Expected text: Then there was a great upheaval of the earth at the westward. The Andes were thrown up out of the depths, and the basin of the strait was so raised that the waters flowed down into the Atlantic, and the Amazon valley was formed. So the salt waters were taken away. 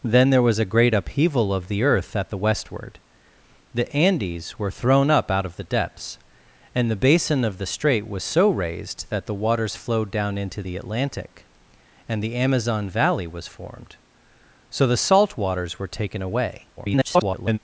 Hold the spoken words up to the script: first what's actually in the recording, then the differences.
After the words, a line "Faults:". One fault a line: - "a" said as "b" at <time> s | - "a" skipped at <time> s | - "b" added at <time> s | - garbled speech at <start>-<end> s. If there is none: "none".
Then there was a great upheaval of the earth at the westward. The Andes were thrown up out of the depths, and the basin of the strait was so raised that the waters flowed down into the Atlantic, and the Amazon valley was formed. So the salt waters were taken away. [garbled]
Faults:
- garbled speech at 16.8-17.6 s